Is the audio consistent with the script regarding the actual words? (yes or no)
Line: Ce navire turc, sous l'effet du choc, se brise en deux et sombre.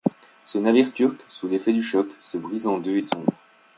yes